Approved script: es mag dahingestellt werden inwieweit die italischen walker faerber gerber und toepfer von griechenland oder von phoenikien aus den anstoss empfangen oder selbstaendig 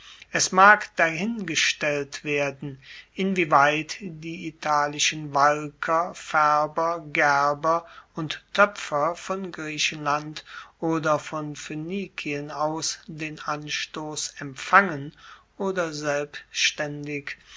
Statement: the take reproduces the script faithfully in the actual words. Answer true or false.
true